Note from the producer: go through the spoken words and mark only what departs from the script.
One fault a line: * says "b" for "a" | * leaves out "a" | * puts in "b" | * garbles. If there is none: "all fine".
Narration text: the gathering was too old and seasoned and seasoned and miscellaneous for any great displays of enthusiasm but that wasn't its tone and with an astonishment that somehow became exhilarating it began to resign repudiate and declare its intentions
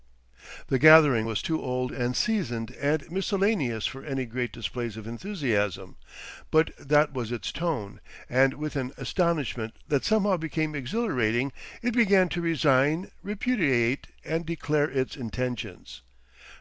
* leaves out "seasoned and"
* says "was" for "wasn't"